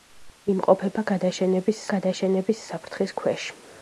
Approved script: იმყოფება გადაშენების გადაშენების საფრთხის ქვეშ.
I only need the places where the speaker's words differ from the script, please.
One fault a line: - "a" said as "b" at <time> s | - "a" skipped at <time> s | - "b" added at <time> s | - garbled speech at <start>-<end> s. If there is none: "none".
none